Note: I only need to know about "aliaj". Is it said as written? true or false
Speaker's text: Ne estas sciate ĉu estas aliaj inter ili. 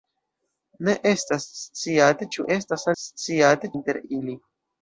false